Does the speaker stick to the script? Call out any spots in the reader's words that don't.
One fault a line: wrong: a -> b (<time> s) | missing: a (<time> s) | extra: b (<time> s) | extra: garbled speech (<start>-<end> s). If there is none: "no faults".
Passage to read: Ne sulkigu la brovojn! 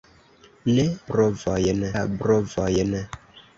wrong: sulkigu -> brovojn (1.1 s)